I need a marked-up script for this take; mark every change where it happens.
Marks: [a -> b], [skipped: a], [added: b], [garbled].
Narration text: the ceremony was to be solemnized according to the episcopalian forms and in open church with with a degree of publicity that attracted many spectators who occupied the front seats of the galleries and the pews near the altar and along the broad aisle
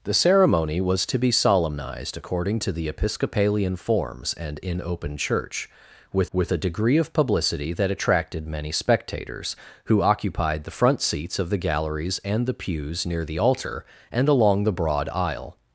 the ceremony was to be solemnized according to the episcopalian forms and in open church with with a degree of publicity that attracted many spectators who occupied the front seats of the galleries and the pews near the altar and along the broad aisle